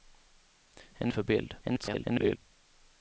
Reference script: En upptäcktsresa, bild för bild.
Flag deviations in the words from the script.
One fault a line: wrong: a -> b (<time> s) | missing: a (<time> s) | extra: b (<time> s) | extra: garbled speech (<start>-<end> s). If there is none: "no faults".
missing: upptäcktsresa bild (1.1 s)
extra: garbled speech (1.6-2.4 s)